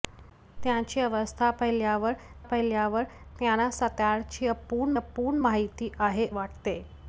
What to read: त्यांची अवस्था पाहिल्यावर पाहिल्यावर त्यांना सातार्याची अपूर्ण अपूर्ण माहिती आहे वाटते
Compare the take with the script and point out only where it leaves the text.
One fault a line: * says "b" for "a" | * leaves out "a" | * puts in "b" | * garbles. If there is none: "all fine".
all fine